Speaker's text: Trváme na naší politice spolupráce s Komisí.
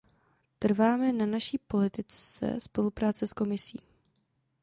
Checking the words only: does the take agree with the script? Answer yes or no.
yes